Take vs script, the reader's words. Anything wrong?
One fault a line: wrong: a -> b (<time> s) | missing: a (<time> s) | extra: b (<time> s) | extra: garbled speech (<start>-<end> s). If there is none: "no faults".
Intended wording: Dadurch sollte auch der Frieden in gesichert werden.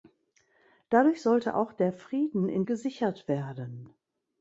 no faults